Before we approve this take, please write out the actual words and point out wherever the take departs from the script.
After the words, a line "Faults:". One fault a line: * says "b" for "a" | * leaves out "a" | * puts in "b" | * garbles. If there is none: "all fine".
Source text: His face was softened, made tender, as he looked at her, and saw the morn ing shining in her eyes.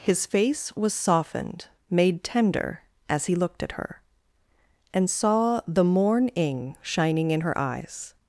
His face was softened, made tender, as he looked at her, and saw the morn ing shining in her eyes.
Faults:
all fine